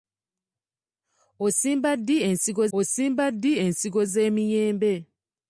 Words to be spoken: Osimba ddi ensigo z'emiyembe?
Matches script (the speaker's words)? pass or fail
fail